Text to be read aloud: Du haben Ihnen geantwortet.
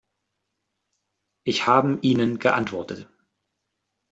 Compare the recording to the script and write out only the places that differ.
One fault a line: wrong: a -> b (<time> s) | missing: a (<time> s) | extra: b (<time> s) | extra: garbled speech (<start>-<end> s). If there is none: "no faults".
wrong: Du -> Ich (1.4 s)